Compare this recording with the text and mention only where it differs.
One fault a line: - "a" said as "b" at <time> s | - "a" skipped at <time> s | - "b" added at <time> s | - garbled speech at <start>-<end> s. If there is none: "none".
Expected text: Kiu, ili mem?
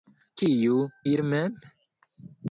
none